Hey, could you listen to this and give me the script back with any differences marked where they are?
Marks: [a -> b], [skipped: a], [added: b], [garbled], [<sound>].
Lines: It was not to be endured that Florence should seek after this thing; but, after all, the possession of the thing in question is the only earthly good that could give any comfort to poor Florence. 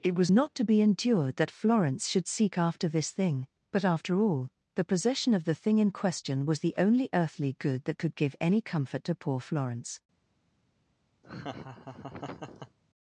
It was not to be endured that Florence should seek after this thing; but, after all, the possession of the thing in question [is -> was] the only earthly good that could give any comfort to poor Florence. [laugh]